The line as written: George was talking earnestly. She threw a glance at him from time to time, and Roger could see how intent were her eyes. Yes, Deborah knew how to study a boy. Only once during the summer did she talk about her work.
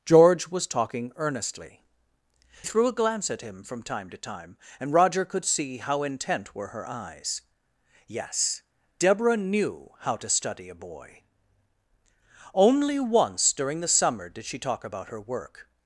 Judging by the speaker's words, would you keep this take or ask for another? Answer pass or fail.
fail